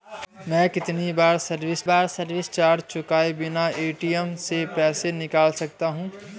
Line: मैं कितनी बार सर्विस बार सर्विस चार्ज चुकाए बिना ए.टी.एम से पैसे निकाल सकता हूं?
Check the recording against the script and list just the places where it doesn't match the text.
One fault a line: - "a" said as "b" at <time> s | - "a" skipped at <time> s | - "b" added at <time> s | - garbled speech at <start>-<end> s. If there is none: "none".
none